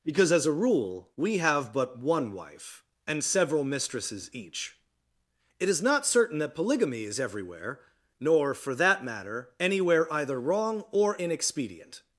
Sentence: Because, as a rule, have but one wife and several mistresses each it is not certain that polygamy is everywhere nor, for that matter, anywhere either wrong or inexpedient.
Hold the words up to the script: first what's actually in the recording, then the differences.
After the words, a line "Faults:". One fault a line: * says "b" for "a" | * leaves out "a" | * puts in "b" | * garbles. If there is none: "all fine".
Because, as a rule, we have but one wife and several mistresses each it is not certain that polygamy is everywhere nor, for that matter, anywhere either wrong or inexpedient.
Faults:
* puts in "we"